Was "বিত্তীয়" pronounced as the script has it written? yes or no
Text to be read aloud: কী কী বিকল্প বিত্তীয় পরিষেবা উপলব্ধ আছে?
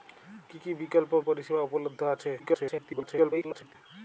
no